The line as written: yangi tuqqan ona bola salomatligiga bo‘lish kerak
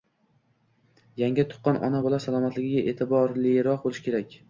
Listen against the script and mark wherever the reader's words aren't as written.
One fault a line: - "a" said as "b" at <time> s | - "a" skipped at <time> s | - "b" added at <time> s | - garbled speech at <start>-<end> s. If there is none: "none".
- "e'tiborliroq" added at 2.9 s